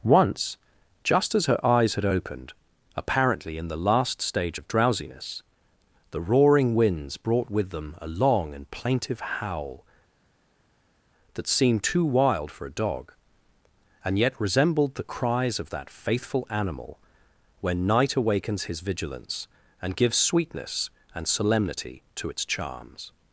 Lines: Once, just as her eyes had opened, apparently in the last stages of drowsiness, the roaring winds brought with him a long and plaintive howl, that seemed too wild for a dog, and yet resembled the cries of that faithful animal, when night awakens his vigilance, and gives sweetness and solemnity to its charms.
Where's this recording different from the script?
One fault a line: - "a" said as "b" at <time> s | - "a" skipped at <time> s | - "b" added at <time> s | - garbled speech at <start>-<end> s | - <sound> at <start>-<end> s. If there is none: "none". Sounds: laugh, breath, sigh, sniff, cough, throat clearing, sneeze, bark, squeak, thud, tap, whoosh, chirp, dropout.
- "stages" said as "stage" at 4.2 s
- "him" said as "them" at 7.7 s